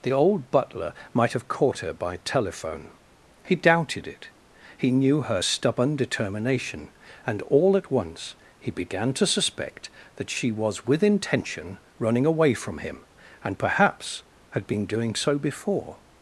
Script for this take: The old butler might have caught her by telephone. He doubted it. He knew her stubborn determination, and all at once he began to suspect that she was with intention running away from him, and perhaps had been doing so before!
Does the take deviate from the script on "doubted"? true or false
false